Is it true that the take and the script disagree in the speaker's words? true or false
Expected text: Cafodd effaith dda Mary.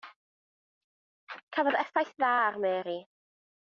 true